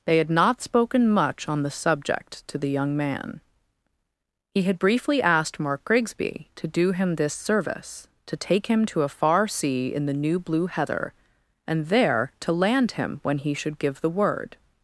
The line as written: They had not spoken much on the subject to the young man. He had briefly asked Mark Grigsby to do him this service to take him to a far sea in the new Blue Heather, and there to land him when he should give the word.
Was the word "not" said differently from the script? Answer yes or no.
no